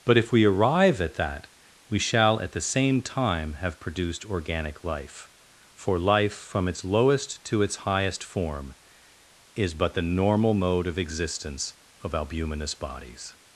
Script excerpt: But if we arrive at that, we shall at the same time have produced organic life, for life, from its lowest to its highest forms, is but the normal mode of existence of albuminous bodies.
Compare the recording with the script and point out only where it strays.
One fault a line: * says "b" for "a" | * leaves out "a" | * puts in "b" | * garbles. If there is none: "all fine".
* says "form" for "forms"